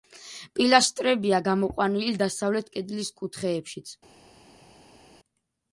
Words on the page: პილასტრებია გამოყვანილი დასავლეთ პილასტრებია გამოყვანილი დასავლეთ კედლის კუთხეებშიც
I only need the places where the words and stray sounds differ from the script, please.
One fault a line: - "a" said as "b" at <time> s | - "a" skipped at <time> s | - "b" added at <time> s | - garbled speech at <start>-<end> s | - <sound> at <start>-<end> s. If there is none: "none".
- "პილასტრებია გამოყვანილი დასავლეთ" skipped at 2.7 s